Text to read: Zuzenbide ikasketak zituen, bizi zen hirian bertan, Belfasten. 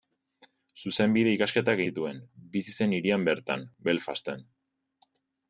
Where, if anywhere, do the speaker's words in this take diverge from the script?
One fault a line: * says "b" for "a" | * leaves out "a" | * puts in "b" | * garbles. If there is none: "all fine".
all fine